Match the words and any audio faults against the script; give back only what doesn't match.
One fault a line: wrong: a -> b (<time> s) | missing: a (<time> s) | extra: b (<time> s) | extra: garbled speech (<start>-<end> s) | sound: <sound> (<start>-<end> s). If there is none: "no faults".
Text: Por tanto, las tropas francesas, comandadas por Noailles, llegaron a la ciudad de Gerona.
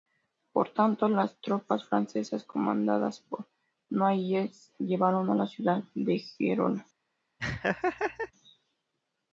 sound: laugh (7.4-8.3 s)